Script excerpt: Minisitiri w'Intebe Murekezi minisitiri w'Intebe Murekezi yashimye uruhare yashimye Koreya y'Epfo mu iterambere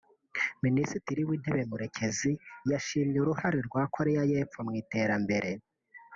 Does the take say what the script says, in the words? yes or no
no